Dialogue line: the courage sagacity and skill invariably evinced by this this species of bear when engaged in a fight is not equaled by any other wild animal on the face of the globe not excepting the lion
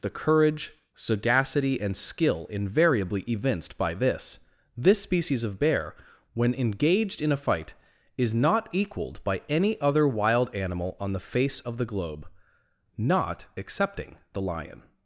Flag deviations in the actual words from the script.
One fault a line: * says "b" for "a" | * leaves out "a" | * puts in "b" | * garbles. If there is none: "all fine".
all fine